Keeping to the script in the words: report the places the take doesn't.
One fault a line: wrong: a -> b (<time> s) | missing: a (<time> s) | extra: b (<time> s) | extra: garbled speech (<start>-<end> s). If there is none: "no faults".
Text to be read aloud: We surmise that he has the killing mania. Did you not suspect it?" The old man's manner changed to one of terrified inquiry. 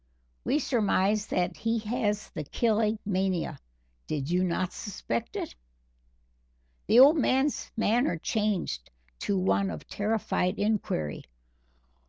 no faults